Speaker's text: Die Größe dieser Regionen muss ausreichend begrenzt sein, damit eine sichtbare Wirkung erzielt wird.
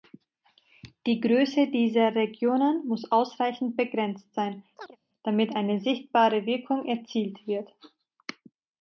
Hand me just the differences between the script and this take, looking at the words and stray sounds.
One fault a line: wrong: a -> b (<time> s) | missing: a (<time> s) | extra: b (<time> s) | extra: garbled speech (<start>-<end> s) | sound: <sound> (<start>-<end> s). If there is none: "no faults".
sound: chirp (4.8-5.0 s)